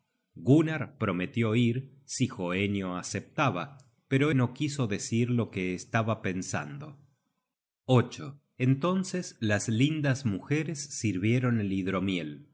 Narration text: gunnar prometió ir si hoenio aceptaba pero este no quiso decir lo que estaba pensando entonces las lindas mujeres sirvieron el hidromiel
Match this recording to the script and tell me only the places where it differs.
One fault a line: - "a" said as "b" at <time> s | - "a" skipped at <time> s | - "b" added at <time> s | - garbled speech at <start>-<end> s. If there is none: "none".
- "este" skipped at 4.3 s